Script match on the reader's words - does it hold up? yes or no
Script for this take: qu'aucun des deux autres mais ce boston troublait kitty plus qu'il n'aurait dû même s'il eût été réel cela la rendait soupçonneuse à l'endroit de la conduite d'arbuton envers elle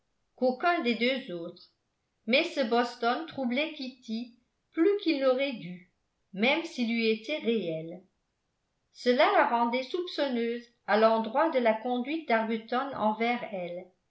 yes